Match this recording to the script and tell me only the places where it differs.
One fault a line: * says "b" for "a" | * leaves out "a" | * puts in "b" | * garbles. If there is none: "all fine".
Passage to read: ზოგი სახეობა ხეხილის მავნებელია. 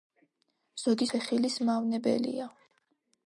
* leaves out "სახეობა"